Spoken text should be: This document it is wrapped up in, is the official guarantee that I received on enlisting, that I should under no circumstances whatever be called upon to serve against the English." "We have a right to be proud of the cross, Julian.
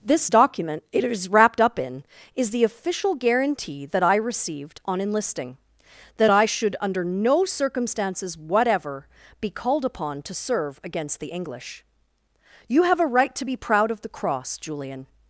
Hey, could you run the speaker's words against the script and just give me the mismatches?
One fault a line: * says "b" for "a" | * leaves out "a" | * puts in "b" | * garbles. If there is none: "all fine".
* says "You" for "We"